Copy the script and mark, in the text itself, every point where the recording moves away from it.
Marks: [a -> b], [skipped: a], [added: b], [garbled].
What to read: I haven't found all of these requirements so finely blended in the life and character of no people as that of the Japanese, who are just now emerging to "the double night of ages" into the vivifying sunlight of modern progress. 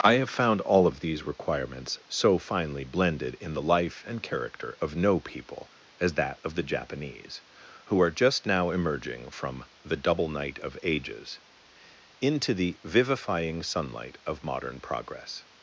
I [haven't -> have] found all of these requirements so finely blended in the life and character of no people as that of the Japanese, who are just now emerging [to -> from] "the double night of ages" into the vivifying sunlight of modern progress.